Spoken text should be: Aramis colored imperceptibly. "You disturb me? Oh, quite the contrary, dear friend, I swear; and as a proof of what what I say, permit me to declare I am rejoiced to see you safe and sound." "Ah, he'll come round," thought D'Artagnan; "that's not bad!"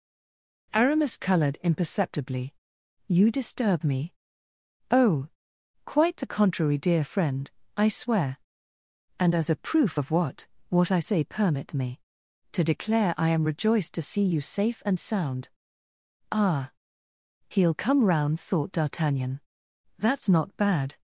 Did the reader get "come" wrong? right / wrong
right